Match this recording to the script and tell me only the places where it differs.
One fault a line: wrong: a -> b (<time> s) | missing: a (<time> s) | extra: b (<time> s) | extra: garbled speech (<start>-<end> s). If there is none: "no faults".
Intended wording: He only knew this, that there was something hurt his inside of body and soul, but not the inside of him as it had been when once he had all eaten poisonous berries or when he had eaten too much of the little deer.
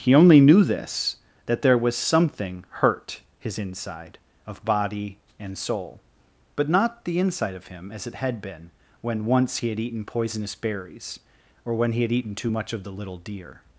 missing: all (9.8 s)